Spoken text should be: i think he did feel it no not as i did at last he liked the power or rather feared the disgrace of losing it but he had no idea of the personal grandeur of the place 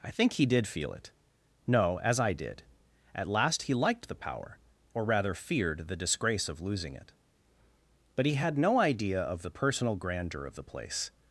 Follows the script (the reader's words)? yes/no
no